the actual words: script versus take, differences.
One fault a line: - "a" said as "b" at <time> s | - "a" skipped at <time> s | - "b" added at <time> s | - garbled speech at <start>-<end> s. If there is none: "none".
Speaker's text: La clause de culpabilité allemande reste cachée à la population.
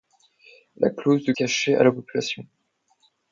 - "culpabilité allemande reste" skipped at 1.3 s